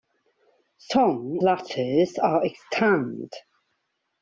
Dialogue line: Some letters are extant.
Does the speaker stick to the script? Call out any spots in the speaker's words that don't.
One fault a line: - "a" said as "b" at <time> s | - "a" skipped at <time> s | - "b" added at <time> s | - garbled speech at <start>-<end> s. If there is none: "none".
none